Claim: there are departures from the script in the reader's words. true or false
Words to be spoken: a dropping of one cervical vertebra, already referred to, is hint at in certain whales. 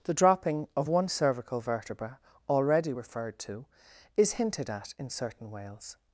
true